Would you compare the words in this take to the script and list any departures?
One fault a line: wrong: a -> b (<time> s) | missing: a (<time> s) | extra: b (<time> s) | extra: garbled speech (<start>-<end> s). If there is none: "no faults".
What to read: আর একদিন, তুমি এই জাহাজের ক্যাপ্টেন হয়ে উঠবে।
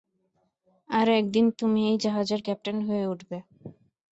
no faults